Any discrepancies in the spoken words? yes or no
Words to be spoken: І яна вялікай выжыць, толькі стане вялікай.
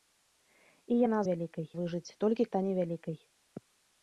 no